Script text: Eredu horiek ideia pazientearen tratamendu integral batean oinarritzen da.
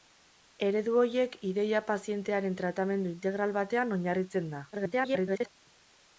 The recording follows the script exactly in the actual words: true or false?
false